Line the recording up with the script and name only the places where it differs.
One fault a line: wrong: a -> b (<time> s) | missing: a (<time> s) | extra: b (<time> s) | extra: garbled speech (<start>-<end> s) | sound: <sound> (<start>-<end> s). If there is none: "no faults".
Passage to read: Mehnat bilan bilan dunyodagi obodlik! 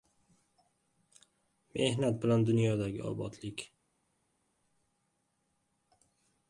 missing: bilan (2.5 s)